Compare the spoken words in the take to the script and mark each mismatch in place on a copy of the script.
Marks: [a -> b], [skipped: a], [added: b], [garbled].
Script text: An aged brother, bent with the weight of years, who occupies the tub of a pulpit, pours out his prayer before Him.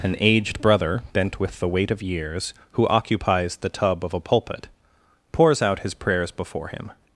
An aged brother, bent with the weight of years, who occupies the tub of a pulpit, pours out his [prayer -> prayers] before Him.